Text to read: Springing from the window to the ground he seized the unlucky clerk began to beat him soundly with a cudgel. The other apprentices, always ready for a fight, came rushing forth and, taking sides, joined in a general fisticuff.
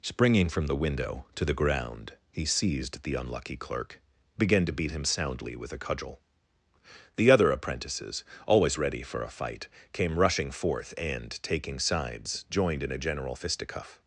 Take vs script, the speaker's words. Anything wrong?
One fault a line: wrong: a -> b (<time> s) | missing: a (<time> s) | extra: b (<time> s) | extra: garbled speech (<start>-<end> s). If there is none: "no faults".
no faults